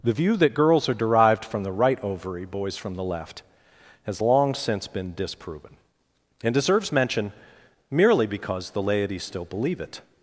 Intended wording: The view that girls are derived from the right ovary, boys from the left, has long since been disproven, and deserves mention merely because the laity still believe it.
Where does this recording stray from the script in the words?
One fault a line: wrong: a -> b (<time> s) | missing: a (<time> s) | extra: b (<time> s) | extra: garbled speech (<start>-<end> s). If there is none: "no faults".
no faults